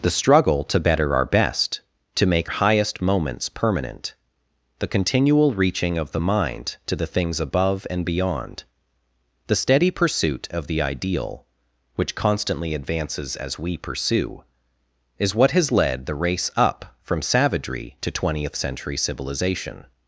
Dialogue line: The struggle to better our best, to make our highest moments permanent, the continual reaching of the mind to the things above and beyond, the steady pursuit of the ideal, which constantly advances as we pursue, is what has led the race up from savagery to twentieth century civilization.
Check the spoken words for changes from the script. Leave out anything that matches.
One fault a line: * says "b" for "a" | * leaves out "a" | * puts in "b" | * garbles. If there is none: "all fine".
* leaves out "our"